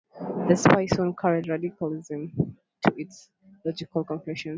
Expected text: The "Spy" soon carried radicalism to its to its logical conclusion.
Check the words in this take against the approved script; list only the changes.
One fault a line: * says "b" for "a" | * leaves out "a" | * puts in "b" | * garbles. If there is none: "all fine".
* leaves out "to its"